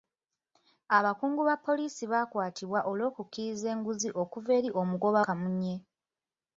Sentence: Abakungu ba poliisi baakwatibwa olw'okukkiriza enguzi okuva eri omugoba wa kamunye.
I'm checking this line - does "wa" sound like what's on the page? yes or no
no